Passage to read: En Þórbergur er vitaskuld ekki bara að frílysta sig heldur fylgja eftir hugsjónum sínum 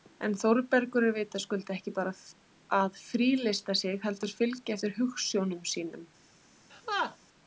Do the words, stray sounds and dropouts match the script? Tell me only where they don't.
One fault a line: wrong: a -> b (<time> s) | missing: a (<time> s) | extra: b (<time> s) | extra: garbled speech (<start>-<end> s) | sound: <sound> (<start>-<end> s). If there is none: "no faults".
sound: laugh (6.7-7.2 s)